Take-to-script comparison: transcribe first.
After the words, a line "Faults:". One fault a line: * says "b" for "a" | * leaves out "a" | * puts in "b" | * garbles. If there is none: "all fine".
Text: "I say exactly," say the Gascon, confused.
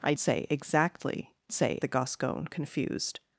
"I say exactly," say the Gascon, confused.
Faults:
all fine